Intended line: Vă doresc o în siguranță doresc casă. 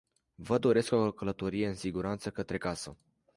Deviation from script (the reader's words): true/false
true